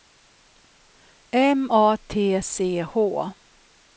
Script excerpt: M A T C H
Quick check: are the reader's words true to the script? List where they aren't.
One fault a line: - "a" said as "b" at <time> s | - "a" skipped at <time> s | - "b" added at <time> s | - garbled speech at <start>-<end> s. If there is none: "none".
none